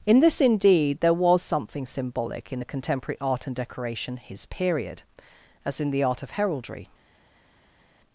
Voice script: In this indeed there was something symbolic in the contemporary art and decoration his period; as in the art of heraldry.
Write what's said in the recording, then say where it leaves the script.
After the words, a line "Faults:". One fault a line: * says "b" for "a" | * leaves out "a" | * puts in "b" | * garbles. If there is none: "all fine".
In this indeed there was something symbolic in the contemporary art and decoration his period; as in the art of heraldry.
Faults:
all fine